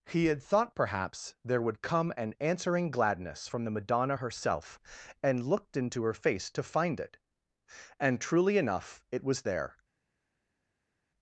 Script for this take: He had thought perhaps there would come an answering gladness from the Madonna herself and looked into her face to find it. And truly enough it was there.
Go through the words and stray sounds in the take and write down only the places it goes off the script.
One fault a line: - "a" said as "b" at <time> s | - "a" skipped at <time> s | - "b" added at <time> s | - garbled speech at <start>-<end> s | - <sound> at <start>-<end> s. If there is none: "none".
none